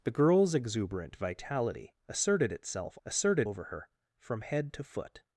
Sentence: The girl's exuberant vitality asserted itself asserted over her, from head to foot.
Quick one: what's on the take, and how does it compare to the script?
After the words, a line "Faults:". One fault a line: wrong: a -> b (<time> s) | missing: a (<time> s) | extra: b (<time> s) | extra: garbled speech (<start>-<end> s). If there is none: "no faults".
The girl's exuberant vitality asserted itself asserted over her, from head to foot.
Faults:
no faults